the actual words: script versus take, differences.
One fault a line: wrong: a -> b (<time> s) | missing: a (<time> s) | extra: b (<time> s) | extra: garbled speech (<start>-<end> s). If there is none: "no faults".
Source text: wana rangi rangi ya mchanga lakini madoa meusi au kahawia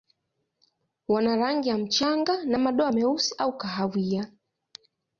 missing: rangi (1.7 s)
wrong: lakini -> na (2.5 s)